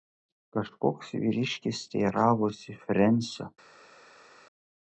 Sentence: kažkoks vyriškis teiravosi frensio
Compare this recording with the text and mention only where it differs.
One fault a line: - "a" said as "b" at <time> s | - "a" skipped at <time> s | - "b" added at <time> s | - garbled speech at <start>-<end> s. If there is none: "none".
none